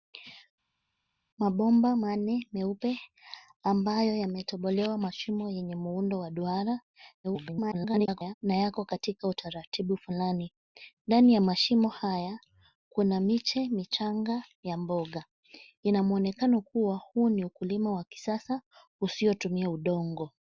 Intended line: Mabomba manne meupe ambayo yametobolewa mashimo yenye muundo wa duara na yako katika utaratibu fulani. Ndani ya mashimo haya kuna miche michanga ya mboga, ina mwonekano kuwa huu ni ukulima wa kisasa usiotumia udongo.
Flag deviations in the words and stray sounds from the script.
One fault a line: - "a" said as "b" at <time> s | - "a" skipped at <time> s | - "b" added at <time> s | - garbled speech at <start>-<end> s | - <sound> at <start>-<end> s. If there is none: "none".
- garbled speech at 7.2-8.3 s